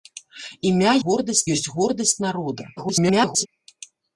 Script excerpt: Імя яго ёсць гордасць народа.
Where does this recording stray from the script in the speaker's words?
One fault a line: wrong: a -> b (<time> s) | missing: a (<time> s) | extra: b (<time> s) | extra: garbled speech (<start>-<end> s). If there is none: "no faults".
wrong: яго -> гордасць (1.0 s)
extra: garbled speech (2.8-3.5 s)